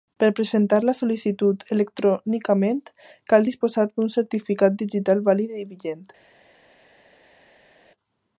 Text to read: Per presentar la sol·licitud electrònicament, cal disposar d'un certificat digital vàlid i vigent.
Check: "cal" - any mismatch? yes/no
no